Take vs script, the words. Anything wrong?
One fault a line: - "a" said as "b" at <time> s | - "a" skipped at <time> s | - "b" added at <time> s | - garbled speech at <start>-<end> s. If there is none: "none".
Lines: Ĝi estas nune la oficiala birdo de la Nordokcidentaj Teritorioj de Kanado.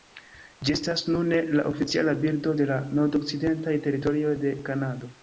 none